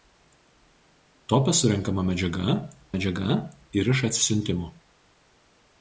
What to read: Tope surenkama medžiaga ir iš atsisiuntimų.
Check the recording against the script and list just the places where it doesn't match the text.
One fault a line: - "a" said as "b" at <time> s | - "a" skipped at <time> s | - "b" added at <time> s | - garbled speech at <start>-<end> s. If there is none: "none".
- "medžiaga" added at 2.9 s